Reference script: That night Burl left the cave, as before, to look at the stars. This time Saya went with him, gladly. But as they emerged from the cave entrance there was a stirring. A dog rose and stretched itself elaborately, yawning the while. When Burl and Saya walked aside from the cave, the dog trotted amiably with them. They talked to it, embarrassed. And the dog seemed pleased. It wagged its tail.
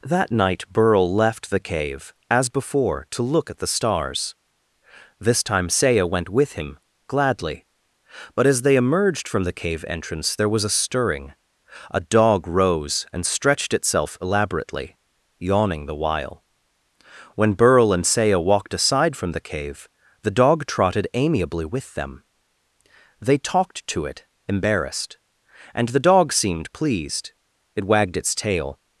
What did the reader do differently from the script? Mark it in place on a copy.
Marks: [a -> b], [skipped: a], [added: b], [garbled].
That night Burl left the cave, as before, to look at the stars. This time Saya went with him, gladly. But as they emerged from the cave entrance there was a stirring. A dog rose and stretched itself elaborately, yawning the while. When Burl and Saya walked aside from the cave, the dog trotted amiably with them. They talked to it, embarrassed. And the dog seemed pleased. It wagged its tail.